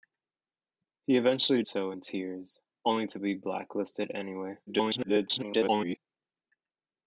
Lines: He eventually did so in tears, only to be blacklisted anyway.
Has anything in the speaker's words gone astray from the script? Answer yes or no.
yes